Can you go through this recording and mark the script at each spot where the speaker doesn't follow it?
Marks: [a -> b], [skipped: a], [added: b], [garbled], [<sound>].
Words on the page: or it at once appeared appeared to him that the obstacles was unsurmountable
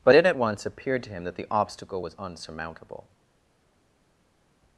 [or -> but] it at once appeared [skipped: appeared] to him that the [obstacles -> obstacle] was unsurmountable